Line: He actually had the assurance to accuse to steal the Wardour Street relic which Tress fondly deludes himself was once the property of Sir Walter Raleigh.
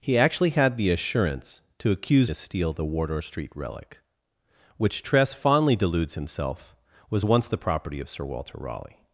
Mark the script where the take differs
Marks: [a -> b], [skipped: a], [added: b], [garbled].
He actually had the assurance to accuse to steal the Wardour Street relic which Tress fondly deludes himself was once the property of Sir Walter Raleigh.